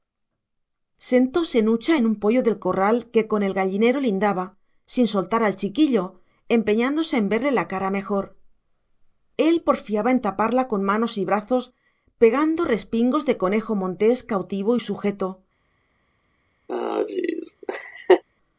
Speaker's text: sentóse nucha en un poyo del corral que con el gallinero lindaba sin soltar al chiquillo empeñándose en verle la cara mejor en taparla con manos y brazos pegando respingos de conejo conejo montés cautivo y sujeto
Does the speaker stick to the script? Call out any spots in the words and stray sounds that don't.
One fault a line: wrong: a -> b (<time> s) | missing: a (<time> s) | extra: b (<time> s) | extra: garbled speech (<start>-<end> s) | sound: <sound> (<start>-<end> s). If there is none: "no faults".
extra: él porfiaba (9.4 s)
missing: conejo (13.7 s)
sound: laugh (16.7-18.2 s)